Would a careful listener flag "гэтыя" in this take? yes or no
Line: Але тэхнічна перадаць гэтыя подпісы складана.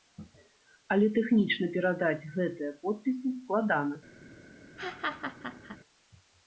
no